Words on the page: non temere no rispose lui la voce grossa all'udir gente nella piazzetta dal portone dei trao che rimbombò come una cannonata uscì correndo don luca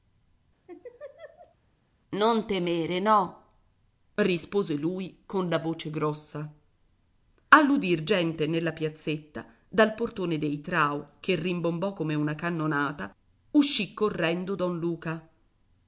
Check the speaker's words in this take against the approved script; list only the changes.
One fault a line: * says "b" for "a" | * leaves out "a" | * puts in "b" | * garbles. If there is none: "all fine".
* puts in "con"